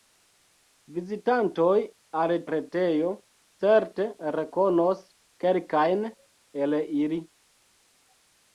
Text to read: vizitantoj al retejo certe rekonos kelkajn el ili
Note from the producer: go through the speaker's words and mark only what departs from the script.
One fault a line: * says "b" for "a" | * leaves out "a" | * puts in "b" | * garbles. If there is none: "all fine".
all fine